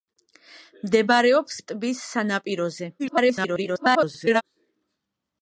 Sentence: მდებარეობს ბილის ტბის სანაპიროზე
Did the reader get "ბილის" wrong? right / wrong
wrong